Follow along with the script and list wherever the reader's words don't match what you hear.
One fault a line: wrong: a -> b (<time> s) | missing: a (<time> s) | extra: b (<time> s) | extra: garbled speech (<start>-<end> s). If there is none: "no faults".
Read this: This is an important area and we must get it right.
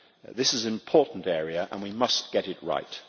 no faults